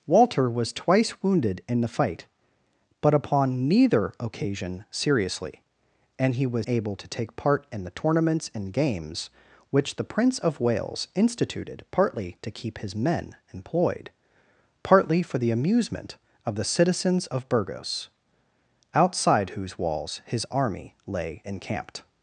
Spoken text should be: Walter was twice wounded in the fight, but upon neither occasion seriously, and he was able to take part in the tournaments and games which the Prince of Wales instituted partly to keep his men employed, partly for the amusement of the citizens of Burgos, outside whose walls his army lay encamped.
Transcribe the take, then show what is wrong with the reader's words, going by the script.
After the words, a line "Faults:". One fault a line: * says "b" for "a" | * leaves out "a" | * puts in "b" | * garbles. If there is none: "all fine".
Walter was twice wounded in the fight, but upon neither occasion seriously, and he was able to take part in the tournaments and games which the Prince of Wales instituted partly to keep his men employed, partly for the amusement of the citizens of Burgos, outside whose walls his army lay encamped.
Faults:
all fine